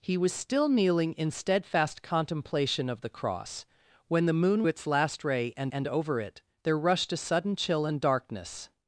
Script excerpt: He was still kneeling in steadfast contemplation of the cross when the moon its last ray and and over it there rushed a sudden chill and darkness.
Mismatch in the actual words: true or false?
false